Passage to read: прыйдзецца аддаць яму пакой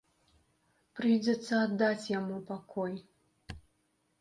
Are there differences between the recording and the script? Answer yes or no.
no